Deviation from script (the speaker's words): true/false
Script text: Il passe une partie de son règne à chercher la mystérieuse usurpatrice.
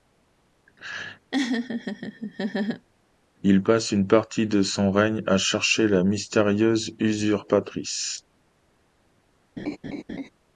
false